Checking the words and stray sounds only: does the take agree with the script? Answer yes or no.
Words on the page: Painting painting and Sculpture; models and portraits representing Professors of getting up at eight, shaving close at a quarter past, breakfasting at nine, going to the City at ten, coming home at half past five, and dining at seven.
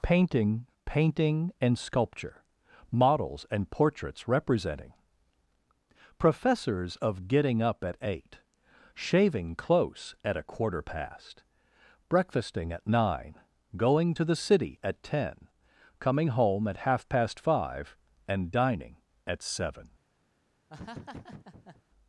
no